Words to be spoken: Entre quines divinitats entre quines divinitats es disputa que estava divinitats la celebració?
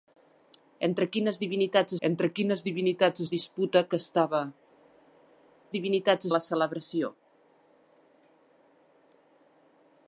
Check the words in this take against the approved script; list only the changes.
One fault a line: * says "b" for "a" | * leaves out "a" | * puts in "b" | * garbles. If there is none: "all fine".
all fine